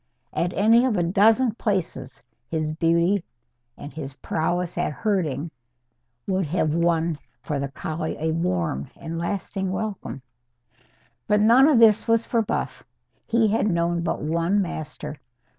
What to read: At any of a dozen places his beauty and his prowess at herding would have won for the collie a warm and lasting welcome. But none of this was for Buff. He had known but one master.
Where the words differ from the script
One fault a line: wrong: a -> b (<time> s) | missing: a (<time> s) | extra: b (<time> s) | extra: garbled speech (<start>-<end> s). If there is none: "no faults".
no faults